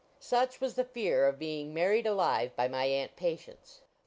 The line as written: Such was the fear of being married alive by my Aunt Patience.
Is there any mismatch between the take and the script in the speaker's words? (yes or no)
no